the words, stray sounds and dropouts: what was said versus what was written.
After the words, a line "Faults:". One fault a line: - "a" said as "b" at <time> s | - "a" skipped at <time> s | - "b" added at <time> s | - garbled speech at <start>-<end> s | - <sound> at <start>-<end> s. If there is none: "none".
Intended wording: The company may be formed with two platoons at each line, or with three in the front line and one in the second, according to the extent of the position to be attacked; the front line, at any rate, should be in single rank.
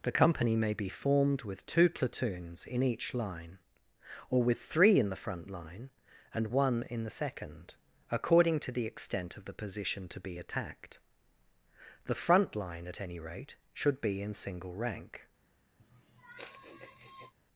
The company may be formed with two platoons in each line, or with three in the front line and one in the second, according to the extent of the position to be attacked; the front line, at any rate, should be in single rank.
Faults:
- "at" said as "in" at 2.6 s
- sigh at 15.8-17.3 s